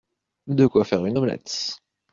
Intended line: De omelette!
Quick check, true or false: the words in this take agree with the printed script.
false